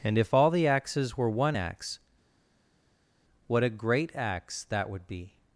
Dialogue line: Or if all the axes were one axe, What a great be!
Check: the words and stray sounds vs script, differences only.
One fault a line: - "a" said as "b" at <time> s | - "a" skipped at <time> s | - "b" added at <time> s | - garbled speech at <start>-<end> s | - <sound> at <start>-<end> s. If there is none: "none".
- "Or" said as "And" at 0.0 s
- "axe that would" added at 4.2 s